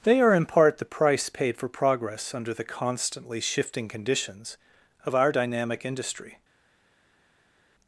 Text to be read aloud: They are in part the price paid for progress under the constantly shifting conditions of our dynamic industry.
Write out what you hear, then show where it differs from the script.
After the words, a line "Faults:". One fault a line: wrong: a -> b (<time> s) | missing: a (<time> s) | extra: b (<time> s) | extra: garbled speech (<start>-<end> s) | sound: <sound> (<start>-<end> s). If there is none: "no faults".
They are in part the price paid for progress under the constantly shifting conditions of our dynamic industry.
Faults:
no faults